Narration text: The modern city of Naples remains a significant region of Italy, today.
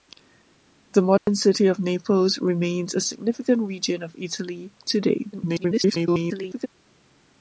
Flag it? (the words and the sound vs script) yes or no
yes